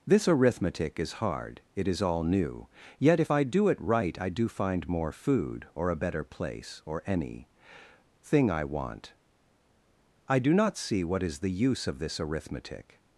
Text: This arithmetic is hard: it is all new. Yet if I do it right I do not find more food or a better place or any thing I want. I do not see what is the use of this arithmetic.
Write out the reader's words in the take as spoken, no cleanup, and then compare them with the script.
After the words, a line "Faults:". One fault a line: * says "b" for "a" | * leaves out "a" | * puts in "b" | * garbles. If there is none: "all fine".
This arithmetic is hard: it is all new. Yet if I do it right I do find more food or a better place or any thing I want. I do not see what is the use of this arithmetic.
Faults:
* leaves out "not"